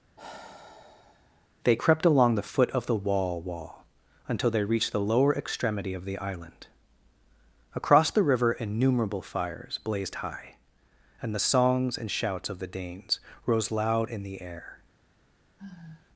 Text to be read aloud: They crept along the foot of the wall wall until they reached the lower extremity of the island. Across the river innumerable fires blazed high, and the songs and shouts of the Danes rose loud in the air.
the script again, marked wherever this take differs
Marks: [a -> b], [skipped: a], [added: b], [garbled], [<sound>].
[sigh] They crept along the foot of the wall wall until they reached the lower extremity of the island. Across the river innumerable fires blazed high, and the songs and shouts of the Danes rose loud in the air. [sigh]